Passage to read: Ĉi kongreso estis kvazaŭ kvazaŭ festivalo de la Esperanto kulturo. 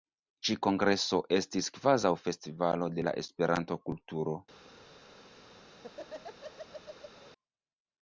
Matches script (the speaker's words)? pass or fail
fail